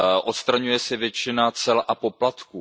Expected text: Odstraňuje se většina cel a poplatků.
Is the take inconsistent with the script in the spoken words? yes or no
no